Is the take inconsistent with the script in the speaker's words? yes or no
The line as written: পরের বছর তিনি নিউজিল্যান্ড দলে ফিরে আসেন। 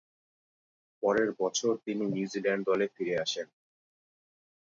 no